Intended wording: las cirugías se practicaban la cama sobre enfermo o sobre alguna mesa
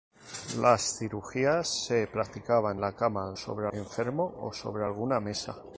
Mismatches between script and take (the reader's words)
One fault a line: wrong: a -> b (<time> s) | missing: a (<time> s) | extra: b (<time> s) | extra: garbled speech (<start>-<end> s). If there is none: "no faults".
no faults